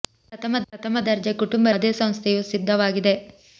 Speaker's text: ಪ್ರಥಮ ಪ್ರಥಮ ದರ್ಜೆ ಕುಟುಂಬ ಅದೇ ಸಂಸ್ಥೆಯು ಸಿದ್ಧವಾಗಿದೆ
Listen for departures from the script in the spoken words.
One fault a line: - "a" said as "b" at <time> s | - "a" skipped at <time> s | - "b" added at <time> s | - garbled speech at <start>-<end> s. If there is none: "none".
none